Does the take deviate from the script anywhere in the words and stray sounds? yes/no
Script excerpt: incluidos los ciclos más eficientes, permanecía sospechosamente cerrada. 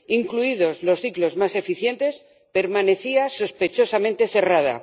no